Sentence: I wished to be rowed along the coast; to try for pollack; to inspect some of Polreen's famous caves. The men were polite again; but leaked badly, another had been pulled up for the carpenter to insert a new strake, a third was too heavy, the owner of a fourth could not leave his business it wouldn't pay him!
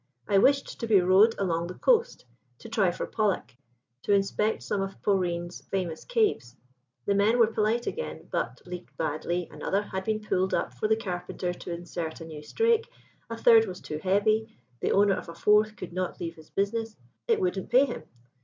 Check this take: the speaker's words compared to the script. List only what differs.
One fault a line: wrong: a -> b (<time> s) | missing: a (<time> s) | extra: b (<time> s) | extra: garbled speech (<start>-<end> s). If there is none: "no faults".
no faults